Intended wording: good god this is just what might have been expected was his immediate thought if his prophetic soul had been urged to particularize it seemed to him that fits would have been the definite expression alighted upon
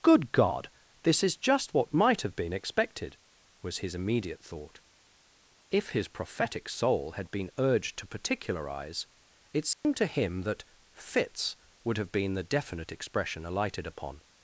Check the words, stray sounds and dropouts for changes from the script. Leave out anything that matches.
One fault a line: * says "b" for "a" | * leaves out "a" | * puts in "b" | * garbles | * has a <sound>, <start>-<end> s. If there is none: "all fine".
* has a dropout, 9.7-9.8 s